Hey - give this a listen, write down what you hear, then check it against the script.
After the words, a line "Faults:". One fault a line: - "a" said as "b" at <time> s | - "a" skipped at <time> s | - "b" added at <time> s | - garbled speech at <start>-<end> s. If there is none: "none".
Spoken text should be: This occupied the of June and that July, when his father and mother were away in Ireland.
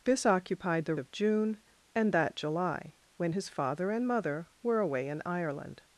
This occupied the of June and that July, when his father and mother were away in Ireland.
Faults:
none